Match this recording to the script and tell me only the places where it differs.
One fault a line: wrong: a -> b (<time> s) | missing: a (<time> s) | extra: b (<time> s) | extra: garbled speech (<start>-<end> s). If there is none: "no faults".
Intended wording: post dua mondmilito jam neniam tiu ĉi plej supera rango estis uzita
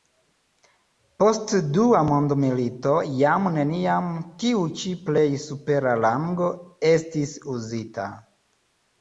no faults